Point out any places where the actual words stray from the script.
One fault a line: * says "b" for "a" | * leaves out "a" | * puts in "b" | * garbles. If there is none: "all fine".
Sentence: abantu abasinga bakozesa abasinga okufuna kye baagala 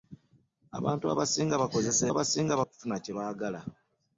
all fine